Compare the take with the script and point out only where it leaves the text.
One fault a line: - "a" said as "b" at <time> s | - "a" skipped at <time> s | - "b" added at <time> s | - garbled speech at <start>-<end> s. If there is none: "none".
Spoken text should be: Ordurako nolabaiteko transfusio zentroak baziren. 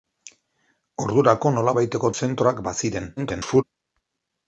- "transfusio" skipped at 2.1 s
- garbled speech at 3.2-3.6 s